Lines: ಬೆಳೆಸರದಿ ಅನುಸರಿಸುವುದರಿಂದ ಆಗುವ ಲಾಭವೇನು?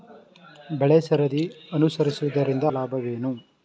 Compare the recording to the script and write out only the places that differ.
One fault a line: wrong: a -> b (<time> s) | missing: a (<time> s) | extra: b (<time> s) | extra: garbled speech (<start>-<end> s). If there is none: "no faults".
missing: ಆಗುವ (2.6 s)